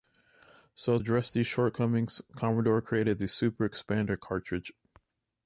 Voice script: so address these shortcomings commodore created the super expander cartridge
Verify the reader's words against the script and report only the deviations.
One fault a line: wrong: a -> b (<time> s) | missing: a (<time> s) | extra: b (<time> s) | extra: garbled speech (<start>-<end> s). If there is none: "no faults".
no faults